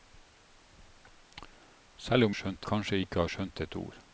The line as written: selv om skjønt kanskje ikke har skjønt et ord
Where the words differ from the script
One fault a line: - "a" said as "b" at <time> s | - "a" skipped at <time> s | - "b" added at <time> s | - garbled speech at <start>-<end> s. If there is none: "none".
none